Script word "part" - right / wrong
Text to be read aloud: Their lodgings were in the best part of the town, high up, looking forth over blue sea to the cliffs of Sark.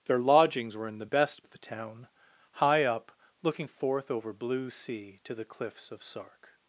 wrong